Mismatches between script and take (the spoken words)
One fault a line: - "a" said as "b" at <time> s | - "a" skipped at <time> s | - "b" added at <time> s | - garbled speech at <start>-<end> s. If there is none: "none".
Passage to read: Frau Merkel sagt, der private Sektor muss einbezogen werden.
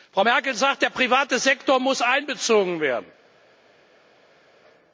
none